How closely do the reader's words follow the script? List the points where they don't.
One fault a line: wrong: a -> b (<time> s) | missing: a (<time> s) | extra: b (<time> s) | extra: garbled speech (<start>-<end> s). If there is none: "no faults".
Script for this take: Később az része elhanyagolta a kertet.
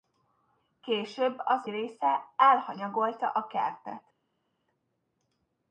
no faults